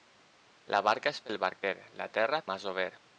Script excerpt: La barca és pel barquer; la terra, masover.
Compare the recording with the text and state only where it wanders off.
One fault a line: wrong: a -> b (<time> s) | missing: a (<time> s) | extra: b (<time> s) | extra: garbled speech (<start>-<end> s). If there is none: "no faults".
no faults